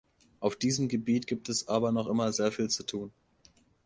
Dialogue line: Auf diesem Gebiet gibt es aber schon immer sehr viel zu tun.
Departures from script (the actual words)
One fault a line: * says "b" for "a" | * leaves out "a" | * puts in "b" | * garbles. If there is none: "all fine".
* says "noch" for "schon"